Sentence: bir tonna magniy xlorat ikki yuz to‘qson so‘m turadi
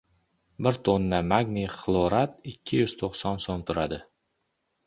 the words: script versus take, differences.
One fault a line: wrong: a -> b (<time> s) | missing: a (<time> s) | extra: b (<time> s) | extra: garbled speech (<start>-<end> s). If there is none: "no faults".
no faults